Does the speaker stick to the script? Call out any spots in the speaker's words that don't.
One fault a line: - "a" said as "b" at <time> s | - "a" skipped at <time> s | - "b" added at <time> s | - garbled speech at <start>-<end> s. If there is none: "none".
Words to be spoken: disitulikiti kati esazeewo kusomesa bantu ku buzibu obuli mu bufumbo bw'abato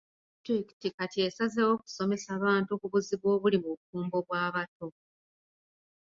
none